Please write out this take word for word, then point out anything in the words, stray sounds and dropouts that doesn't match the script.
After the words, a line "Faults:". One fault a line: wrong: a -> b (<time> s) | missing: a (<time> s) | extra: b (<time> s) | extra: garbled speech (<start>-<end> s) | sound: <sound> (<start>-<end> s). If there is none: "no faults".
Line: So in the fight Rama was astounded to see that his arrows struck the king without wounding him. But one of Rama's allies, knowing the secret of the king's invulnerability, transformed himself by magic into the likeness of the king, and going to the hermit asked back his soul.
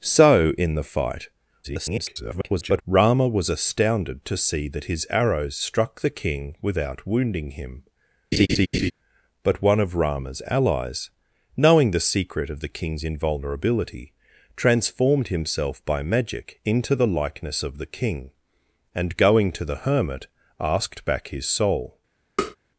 So in the fight [garbled] Rama was astounded to see that his arrows struck the king without wounding him. But one of Rama's allies, knowing the secret of the king's invulnerability, transformed himself by magic into the likeness of the king, and going to the hermit asked back his soul.
Faults:
extra: garbled speech (1.6-2.8 s)
sound: laugh (8.3-8.9 s)
sound: tap (22.4-22.6 s)